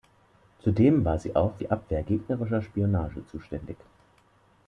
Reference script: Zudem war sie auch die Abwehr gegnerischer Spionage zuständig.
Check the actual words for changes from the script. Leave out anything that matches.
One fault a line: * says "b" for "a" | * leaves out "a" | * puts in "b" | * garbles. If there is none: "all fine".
all fine